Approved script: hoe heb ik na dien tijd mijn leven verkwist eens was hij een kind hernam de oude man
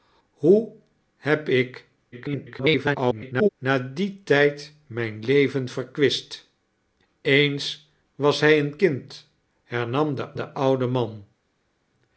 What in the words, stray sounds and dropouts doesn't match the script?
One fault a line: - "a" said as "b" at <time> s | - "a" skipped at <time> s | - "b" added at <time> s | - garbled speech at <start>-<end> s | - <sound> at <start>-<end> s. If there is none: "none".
- garbled speech at 2.1-3.5 s
- "de" added at 10.4 s